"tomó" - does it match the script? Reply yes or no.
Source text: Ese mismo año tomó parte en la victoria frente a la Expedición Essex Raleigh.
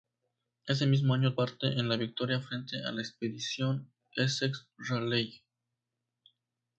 no